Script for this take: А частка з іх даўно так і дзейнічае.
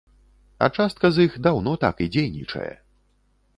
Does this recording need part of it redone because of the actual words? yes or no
no